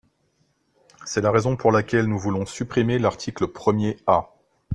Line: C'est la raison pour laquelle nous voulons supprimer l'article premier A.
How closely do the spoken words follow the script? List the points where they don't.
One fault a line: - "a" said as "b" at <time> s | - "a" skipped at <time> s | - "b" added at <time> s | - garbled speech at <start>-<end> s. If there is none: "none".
none